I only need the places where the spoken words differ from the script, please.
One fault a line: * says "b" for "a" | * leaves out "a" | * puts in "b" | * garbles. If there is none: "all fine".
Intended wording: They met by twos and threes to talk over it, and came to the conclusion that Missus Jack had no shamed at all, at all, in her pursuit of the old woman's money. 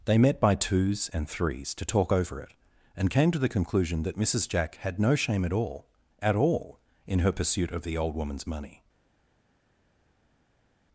* says "shame" for "shamed"